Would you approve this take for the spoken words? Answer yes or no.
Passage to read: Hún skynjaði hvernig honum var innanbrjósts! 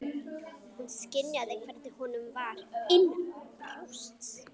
yes